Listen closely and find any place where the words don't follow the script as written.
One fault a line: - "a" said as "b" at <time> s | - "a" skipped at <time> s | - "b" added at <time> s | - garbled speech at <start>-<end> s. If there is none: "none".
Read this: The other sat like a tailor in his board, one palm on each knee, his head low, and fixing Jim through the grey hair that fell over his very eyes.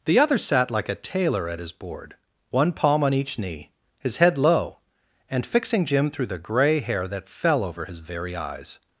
- "in" said as "at" at 1.5 s